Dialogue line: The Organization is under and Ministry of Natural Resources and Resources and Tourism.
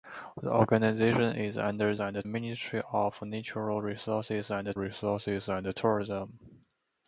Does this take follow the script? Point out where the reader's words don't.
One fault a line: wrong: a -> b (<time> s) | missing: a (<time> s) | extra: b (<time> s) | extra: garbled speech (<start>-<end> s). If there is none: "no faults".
no faults